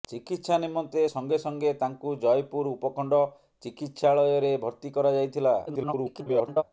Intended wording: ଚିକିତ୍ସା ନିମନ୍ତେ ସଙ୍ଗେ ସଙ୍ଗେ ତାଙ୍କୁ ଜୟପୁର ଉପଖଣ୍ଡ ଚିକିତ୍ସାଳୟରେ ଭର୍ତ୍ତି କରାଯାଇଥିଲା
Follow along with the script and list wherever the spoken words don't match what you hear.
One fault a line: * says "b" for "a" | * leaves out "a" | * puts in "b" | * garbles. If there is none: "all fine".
* garbles